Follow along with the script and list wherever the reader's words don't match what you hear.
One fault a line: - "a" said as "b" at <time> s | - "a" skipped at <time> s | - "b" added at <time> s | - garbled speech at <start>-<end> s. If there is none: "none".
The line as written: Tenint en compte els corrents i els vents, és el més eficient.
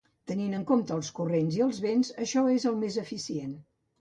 - "això" added at 2.3 s